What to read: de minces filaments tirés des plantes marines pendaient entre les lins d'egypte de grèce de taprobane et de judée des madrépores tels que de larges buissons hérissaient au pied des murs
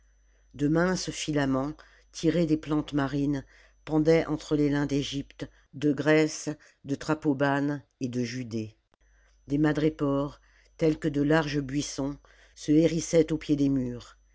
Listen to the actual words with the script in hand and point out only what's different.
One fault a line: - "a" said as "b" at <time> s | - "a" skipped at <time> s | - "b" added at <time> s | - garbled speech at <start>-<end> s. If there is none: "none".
- "se" added at 12.5 s